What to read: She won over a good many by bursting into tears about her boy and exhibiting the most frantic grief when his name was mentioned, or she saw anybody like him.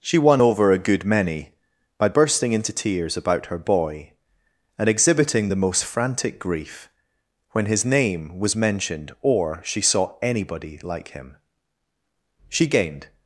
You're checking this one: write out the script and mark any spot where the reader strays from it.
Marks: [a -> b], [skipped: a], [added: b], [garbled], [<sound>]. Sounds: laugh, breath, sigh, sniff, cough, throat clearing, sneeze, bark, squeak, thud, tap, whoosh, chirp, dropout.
She won over a good many by bursting into tears about her boy and exhibiting the most frantic grief when his name was mentioned, or she saw anybody like him. [added: She gained]